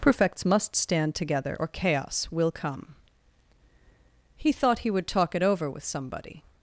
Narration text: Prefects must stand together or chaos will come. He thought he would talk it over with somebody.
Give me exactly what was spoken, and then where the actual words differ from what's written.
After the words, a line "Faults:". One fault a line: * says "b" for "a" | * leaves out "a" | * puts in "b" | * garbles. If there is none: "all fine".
Prefects must stand together or chaos will come. He thought he would talk it over with somebody.
Faults:
all fine